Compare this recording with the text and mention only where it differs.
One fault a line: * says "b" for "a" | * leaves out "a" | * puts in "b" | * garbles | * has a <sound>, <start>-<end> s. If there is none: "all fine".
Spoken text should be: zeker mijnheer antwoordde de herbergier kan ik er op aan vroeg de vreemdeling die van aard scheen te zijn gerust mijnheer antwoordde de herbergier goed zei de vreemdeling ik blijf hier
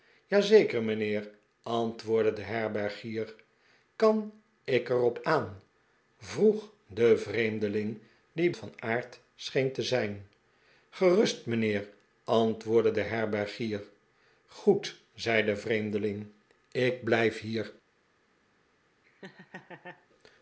* has a laugh, 19.0-20.1 s